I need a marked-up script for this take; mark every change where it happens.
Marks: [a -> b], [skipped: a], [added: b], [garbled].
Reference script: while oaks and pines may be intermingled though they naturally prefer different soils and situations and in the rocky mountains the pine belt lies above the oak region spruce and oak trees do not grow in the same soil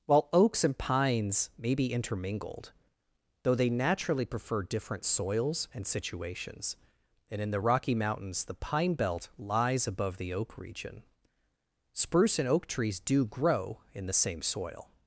while oaks and pines may be intermingled though they naturally prefer different soils and situations and in the rocky mountains the pine belt lies above the oak region spruce and oak trees do [skipped: not] grow in the same soil